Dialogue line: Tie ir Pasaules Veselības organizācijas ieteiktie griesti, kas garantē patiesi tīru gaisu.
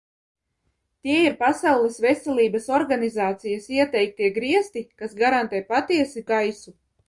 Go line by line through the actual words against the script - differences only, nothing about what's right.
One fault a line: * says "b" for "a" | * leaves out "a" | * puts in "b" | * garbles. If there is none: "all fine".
* leaves out "tīru"